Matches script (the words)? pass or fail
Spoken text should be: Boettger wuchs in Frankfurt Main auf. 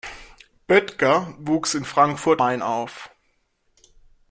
pass